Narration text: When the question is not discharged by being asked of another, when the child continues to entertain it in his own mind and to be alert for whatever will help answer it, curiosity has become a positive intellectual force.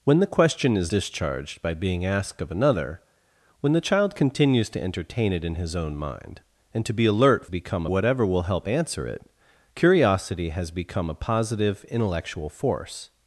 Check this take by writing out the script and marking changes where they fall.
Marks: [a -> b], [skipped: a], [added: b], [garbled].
When the question is [skipped: not] discharged by being asked of another, when the child continues to entertain it in his own mind and to be alert [for -> become] whatever will help answer it, curiosity has become a positive intellectual force.